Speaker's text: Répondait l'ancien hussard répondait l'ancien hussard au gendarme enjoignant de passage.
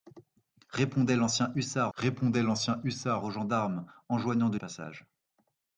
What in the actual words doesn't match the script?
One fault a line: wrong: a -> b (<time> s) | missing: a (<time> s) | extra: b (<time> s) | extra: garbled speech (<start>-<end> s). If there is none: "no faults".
no faults